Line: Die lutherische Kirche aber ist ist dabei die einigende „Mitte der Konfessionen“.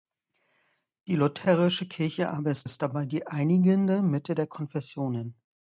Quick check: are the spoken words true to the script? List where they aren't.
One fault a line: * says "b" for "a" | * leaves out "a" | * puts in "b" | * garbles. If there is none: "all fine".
all fine